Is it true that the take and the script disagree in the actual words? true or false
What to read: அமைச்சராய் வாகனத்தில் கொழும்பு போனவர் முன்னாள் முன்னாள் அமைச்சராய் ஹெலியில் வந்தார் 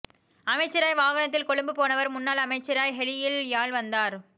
true